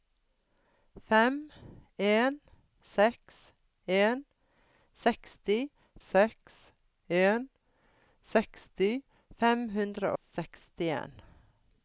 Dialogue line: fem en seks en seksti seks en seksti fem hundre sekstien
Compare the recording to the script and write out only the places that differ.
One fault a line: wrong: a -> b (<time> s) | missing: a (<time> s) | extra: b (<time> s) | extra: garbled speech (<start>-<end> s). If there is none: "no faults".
no faults